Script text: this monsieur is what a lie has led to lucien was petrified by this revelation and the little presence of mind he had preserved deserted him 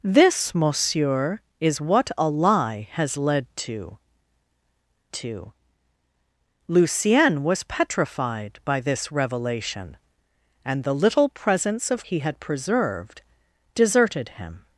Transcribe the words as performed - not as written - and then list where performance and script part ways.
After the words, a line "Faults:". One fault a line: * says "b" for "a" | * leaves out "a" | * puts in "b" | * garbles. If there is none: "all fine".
this monsieur is what a lie has led to to lucien was petrified by this revelation and the little presence of he had preserved deserted him
Faults:
* puts in "to"
* leaves out "mind"